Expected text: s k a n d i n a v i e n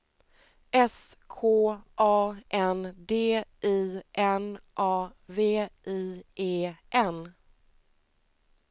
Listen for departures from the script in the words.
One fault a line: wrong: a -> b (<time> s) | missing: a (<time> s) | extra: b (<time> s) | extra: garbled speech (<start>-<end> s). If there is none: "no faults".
no faults